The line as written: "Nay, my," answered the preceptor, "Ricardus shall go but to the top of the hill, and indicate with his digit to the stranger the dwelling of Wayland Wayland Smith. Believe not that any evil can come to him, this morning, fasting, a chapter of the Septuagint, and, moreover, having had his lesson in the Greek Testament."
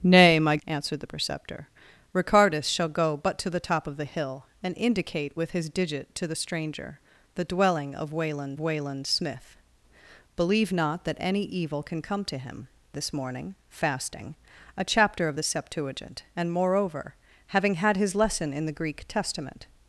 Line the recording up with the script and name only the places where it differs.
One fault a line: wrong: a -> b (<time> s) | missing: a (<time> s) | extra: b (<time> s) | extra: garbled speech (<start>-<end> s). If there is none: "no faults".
no faults